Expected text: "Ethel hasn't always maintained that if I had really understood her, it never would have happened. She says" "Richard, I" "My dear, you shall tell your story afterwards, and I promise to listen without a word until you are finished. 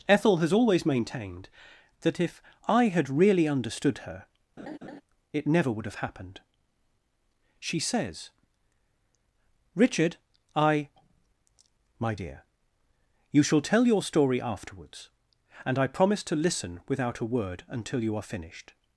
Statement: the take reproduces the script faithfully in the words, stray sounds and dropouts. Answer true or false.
false